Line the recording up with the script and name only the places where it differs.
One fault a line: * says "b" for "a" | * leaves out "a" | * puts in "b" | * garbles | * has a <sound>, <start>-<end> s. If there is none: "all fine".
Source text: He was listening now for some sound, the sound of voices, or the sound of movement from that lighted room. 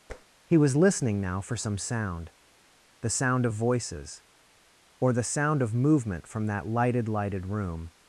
* has a tap, 0.1-0.3 s
* puts in "lighted"